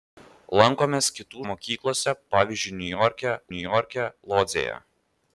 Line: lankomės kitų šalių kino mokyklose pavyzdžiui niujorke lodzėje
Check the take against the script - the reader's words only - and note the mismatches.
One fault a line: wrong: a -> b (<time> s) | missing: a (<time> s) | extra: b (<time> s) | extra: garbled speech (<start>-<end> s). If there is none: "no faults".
missing: šalių kino (1.4 s)
extra: niujorke (3.6 s)